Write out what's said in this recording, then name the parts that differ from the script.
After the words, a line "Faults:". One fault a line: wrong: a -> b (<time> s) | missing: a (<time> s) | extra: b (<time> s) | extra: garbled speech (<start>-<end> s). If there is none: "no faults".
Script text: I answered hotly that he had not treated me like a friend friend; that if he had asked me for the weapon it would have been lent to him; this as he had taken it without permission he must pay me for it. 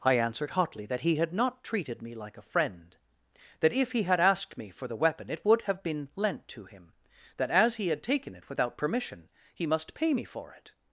I answered hotly that he had not treated me like a friend; that if he had asked me for the weapon it would have been lent to him; that as he had taken it without permission he must pay me for it.
Faults:
missing: friend (3.0 s)
wrong: this -> that (7.4 s)